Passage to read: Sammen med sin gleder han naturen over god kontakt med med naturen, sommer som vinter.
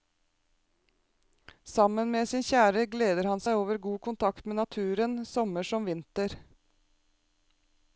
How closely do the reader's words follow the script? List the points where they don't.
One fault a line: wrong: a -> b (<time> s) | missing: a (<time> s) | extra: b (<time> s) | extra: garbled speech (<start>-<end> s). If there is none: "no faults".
extra: kjære (2.5 s)
wrong: naturen -> seg (3.4 s)
missing: med (4.6 s)